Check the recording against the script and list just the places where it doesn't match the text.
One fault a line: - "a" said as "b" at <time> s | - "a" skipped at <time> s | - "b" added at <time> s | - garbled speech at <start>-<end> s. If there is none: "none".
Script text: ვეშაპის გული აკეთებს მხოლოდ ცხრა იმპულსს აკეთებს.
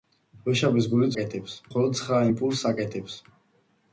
none